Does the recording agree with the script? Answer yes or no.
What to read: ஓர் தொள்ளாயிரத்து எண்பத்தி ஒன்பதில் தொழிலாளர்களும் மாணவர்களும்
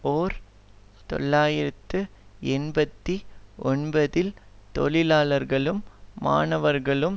yes